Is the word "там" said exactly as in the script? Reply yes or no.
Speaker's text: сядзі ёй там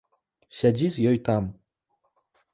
yes